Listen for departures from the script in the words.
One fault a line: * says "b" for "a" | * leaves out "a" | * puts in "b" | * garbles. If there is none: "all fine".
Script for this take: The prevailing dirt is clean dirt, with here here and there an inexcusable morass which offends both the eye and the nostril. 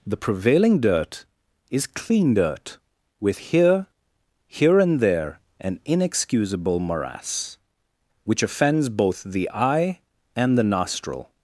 all fine